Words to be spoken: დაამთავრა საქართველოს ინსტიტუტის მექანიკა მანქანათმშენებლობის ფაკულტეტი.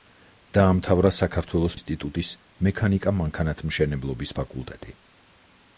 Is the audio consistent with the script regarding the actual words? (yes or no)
yes